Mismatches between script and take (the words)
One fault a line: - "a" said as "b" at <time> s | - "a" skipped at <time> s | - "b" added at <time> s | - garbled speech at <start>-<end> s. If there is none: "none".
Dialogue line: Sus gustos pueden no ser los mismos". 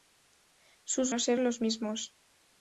- "gustos pueden" skipped at 1.1 s